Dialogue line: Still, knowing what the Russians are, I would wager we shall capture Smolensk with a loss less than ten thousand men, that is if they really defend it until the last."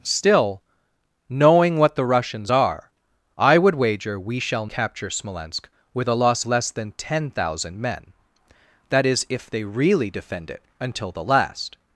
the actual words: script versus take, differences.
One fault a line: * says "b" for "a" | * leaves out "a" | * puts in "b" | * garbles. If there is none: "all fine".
all fine